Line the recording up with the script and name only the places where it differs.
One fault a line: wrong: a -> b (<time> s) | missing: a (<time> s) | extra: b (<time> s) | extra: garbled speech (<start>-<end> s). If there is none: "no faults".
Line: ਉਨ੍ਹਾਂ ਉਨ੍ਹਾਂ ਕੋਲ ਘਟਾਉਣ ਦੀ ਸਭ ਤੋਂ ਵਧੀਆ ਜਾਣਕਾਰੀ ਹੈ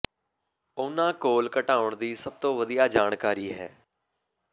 missing: ਉਨ੍ਹਾਂ (1.1 s)